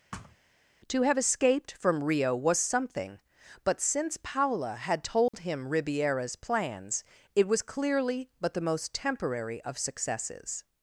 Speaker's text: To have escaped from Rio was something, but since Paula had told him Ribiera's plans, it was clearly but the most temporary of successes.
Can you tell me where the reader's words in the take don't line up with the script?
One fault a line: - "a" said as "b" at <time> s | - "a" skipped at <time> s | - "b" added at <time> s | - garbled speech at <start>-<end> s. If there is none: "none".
none